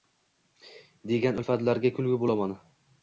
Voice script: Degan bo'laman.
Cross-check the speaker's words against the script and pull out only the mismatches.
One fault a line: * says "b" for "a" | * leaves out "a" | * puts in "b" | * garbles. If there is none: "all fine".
* puts in "ulfatlarga kulgi"